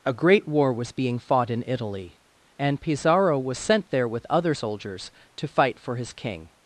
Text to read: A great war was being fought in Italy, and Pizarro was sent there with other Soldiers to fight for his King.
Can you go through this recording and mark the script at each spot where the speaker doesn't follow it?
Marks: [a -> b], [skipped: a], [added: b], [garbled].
A great war was being fought in Italy, and Pizarro was sent there with other Soldiers to fight for his King.